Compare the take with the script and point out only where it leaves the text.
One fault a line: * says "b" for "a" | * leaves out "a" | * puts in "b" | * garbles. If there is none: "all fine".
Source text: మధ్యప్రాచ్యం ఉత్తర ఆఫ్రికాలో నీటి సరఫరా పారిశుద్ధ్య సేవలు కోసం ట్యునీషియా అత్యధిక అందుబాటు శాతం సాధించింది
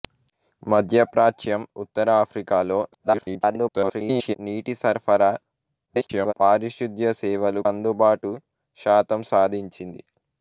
* garbles
* garbles
* leaves out "కోసం ట్యునీషియా అత్యధిక"